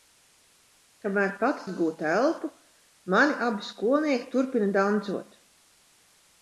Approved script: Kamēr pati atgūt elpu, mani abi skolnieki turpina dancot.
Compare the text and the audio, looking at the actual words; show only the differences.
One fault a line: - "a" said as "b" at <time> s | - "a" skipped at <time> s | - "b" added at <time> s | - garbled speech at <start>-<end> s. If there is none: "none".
none